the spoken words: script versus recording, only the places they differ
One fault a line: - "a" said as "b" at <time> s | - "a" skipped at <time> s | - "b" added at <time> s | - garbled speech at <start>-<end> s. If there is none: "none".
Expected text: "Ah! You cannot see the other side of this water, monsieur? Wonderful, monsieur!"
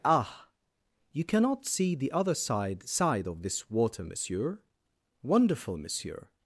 - "side" added at 2.9 s